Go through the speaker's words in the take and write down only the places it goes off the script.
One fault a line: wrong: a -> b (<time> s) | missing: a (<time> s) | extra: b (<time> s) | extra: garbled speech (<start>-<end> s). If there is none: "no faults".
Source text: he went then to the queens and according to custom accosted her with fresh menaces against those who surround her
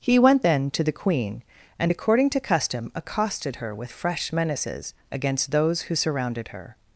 wrong: queens -> queen (0.9 s)
wrong: surround -> surrounded (5.9 s)